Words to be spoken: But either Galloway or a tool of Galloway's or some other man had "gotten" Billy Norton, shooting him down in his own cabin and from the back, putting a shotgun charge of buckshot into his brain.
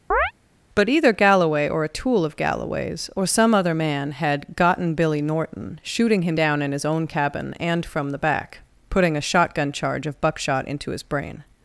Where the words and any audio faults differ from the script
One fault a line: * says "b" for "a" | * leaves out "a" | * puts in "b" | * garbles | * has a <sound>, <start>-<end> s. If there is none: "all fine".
* has a chirp, 0.1-0.3 s